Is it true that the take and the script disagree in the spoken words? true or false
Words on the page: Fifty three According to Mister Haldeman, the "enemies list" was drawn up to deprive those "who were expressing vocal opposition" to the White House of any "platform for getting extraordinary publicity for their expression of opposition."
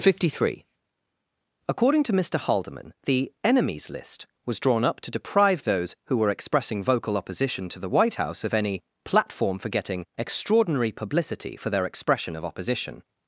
false